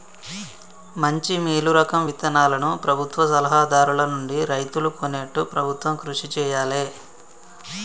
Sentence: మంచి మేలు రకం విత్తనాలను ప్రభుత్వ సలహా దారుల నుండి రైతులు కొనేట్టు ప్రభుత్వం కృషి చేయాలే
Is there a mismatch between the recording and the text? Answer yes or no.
no